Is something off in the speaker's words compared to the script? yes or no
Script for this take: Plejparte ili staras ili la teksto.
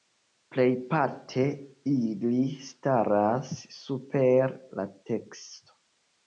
yes